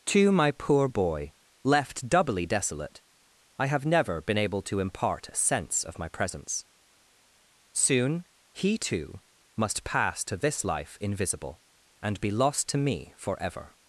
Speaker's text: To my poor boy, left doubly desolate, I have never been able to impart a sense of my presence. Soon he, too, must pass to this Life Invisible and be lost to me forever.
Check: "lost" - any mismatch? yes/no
no